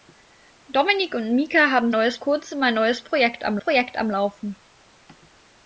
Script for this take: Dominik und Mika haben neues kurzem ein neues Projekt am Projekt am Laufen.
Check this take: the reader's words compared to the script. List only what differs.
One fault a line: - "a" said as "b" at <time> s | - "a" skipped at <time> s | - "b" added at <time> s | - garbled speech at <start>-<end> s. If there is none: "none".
none